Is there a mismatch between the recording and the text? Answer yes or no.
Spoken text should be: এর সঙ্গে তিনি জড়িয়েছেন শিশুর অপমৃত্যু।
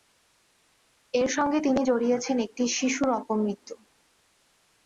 yes